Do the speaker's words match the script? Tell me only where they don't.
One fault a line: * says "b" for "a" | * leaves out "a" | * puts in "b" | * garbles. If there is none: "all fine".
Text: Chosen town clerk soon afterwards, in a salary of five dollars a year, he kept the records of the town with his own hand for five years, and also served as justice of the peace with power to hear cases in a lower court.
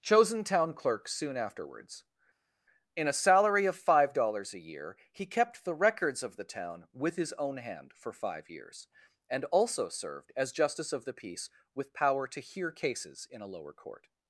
all fine